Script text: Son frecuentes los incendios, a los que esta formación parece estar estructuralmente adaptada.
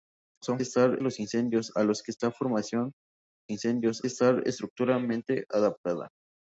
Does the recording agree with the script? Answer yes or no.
no